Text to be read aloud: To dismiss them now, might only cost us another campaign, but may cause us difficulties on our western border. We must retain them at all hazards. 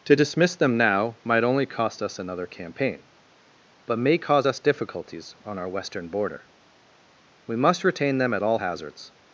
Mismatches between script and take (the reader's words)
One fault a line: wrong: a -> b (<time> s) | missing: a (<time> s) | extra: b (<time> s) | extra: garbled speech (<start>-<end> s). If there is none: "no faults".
no faults